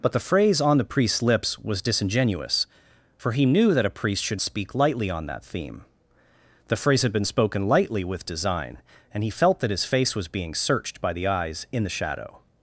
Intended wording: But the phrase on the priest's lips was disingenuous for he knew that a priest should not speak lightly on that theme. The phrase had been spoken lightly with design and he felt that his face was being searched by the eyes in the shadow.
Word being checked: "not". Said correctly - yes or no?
no